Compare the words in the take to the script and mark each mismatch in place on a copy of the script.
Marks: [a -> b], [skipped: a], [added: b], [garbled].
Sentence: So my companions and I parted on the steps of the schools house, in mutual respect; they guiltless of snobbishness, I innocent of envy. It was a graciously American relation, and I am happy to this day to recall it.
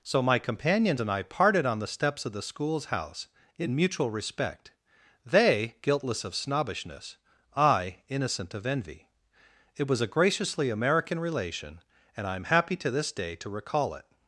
So my companions and I parted on the steps of the schools house, in mutual respect; they guiltless of snobbishness, I innocent of envy. It was a graciously American relation, and I am happy to this day to recall it.